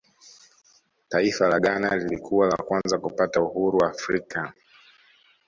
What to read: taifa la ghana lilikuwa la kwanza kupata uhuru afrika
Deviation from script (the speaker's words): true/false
false